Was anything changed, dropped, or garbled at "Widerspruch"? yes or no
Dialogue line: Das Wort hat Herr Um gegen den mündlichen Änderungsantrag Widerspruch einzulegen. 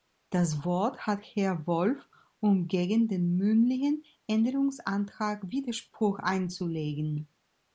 no